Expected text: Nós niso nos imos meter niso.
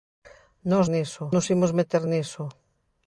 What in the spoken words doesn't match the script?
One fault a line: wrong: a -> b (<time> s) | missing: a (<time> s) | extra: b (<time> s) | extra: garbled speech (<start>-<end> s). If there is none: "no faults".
no faults